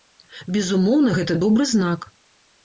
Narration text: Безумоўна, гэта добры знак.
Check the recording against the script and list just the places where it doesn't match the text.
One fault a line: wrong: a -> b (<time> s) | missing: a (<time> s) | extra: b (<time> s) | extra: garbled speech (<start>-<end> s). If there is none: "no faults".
no faults